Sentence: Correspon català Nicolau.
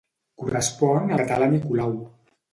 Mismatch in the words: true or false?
false